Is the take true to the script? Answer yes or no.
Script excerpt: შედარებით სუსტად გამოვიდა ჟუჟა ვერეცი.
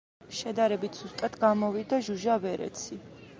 yes